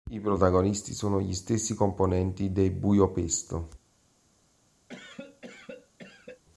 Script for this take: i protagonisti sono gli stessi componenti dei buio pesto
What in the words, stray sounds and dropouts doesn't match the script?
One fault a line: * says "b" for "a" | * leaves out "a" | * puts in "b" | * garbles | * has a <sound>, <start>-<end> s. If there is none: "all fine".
* has a cough, 4.9-6.4 s